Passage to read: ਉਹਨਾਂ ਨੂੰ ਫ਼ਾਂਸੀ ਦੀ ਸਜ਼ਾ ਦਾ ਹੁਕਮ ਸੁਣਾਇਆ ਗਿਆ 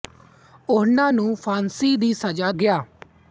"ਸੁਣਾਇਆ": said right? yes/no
no